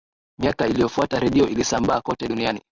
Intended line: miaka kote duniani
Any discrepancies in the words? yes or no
yes